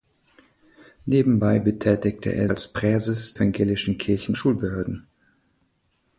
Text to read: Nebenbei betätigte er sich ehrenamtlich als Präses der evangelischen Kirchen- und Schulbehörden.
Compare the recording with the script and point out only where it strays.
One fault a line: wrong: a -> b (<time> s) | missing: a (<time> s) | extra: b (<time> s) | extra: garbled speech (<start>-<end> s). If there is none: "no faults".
missing: sich ehrenamtlich (2.5 s)
missing: der (3.3 s)
missing: und (4.3 s)